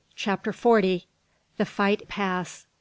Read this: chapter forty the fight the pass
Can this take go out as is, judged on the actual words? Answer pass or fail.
pass